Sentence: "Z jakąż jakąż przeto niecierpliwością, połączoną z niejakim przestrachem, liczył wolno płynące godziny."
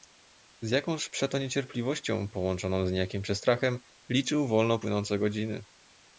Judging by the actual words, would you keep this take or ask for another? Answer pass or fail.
fail